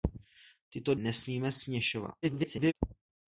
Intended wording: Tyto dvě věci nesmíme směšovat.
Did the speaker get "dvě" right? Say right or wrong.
wrong